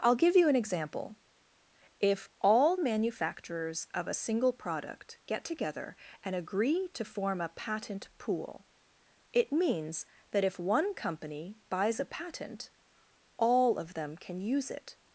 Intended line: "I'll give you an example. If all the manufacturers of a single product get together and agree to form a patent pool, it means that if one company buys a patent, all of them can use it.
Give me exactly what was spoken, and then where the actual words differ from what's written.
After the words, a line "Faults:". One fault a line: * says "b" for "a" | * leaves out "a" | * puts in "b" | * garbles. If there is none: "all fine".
"I'll give you an example. If all manufacturers of a single product get together and agree to form a patent pool, it means that if one company buys a patent, all of them can use it.
Faults:
* leaves out "the"